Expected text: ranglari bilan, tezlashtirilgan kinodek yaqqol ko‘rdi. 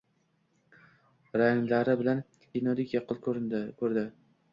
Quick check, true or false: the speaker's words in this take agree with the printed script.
false